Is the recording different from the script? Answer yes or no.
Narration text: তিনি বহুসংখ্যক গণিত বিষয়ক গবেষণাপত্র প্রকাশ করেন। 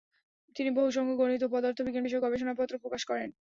yes